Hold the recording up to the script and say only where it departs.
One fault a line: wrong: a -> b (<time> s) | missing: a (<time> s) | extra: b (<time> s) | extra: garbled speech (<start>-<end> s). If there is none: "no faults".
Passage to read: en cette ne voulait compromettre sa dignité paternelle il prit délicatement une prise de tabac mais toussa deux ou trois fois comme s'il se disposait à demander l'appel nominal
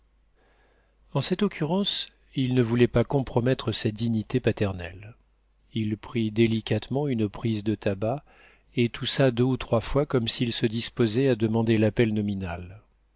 extra: occurrence il (1.4 s)
extra: pas (2.9 s)
wrong: mais -> et (8.8 s)